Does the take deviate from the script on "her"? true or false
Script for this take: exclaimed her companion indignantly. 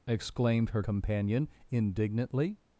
false